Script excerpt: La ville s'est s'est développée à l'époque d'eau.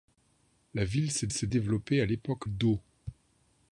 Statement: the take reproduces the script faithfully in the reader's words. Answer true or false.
true